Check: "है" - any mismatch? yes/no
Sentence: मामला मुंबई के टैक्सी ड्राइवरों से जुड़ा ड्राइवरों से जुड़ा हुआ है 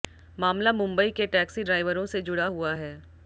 no